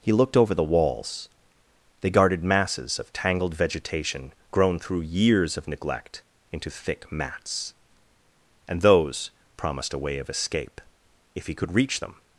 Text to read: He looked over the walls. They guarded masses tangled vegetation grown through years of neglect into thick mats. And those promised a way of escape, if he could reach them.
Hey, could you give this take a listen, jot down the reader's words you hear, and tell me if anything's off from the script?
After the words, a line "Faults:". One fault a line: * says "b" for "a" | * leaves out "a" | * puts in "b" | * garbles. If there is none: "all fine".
He looked over the walls. They guarded masses of tangled vegetation grown through years of neglect into thick mats. And those promised a way of escape, if he could reach them.
Faults:
* puts in "of"